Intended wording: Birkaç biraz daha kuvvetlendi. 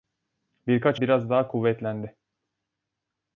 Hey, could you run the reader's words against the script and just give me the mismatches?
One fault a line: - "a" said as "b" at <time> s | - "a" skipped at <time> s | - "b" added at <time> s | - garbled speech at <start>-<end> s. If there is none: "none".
none